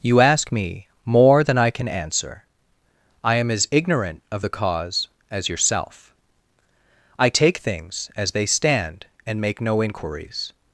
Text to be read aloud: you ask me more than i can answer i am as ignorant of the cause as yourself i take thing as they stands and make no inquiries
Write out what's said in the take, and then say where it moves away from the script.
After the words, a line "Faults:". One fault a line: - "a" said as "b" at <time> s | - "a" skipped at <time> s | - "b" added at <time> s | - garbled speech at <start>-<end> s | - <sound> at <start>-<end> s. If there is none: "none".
you ask me more than i can answer i am as ignorant of the cause as yourself i take things as they stand and make no inquiries
Faults:
- "thing" said as "things" at 7.6 s
- "stands" said as "stand" at 8.5 s